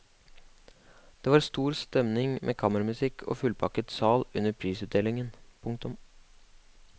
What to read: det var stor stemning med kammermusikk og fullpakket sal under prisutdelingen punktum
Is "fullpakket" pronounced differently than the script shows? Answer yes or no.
no